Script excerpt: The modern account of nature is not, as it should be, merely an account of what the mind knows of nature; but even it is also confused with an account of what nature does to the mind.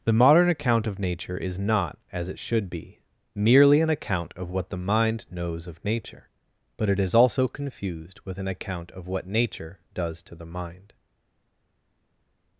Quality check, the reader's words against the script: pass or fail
fail